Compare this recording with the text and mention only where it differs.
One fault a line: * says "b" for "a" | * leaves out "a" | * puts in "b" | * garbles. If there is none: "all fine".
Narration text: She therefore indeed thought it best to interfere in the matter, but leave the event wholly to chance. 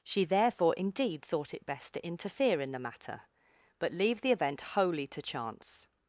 all fine